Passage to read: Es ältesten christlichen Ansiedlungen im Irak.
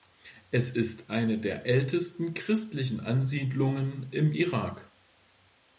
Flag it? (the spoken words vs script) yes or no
yes